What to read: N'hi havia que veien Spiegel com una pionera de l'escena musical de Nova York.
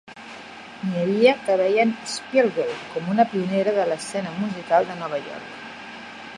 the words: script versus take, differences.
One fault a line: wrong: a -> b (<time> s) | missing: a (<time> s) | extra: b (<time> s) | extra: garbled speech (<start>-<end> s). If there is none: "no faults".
no faults